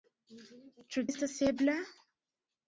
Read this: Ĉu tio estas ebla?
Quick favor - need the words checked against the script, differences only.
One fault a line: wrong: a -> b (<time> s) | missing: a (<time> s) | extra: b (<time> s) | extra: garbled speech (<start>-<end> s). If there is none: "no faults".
missing: tio (1.0 s)